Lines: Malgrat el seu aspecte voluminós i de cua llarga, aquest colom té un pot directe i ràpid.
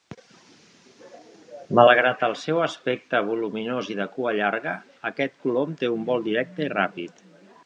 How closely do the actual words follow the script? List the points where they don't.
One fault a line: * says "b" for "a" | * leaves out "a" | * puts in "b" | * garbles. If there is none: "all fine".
* says "vol" for "pot"